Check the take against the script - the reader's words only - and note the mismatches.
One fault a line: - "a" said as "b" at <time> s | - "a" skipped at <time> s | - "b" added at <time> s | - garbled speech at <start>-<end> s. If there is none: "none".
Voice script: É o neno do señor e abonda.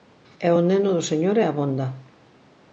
none